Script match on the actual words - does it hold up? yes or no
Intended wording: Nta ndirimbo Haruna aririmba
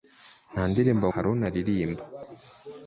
yes